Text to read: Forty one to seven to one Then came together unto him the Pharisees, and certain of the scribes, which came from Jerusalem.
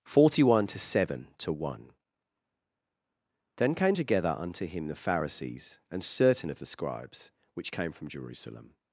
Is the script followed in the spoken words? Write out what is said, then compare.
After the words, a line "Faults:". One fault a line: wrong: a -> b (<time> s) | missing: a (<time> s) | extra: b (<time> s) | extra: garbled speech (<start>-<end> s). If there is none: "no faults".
Forty one to seven to one Then came together unto him the Pharisees, and certain of the scribes, which came from Jerusalem.
Faults:
no faults